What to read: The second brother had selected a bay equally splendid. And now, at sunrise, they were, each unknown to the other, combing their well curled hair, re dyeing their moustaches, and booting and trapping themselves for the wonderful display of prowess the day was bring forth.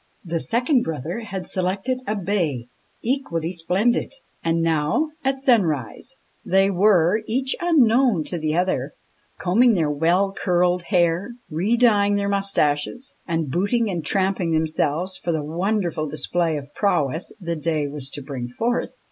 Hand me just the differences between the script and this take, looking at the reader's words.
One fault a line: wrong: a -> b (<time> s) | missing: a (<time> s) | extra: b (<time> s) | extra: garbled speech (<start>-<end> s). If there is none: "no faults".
extra: to (18.1 s)